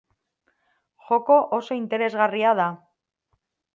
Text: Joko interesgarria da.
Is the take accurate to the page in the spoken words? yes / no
no